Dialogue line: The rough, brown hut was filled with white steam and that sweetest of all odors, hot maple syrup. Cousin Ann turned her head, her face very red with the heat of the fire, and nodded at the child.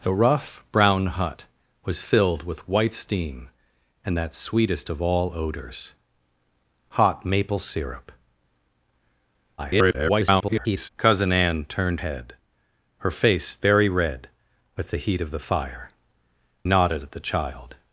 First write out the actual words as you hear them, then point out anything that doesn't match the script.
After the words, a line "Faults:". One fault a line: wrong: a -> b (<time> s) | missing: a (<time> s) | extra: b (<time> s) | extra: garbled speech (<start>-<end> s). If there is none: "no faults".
The rough, brown hut was filled with white steam and that sweetest of all odors, hot maple syrup. [garbled] Cousin Ann turned head, her face very red with the heat of the fire, nodded at the child.
Faults:
extra: garbled speech (9.6-10.9 s)
missing: her (12.0 s)
missing: and (15.9 s)